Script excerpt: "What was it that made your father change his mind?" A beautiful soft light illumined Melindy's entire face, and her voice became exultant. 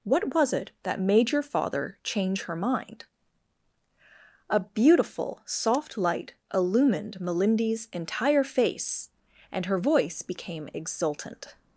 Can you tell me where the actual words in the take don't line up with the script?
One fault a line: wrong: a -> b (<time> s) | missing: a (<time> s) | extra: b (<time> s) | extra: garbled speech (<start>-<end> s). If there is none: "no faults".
wrong: his -> her (2.4 s)